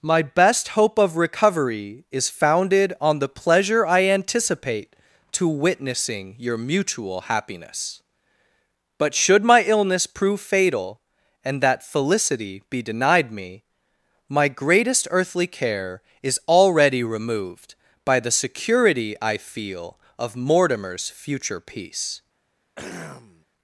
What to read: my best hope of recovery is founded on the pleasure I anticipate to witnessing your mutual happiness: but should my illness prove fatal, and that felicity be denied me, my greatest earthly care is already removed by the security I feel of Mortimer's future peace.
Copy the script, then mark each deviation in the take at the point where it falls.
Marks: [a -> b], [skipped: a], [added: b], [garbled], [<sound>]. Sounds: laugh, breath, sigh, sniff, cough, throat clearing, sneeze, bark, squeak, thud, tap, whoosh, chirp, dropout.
my best hope of recovery is founded on the pleasure I anticipate to witnessing your mutual happiness: but should my illness prove fatal, and that felicity be denied me, my greatest earthly care is already removed by the security I feel of Mortimer's future peace. [throat clearing]